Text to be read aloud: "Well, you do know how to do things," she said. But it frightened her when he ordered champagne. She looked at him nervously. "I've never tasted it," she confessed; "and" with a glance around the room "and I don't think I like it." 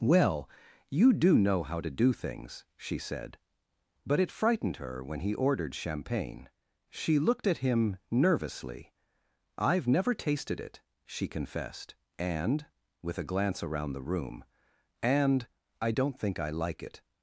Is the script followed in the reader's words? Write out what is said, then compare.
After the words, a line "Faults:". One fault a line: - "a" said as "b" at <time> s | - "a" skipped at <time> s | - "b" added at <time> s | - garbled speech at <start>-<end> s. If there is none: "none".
"Well, you do know how to do things," she said. But it frightened her when he ordered champagne. She looked at him nervously. "I've never tasted it," she confessed; "and" with a glance around the room "and I don't think I like it."
Faults:
none